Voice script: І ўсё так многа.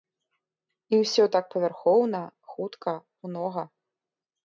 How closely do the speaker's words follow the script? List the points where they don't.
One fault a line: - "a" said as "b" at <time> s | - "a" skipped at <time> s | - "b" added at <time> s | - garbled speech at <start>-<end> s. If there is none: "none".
- "павярхоўна хутка" added at 1.5 s